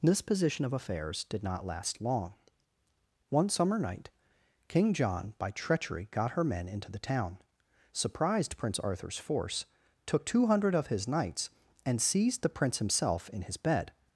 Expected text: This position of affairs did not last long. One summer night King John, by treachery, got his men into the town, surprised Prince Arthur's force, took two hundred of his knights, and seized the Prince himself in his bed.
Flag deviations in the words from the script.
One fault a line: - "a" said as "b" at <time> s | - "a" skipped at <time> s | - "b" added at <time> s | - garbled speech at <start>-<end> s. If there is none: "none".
- "his" said as "her" at 6.3 s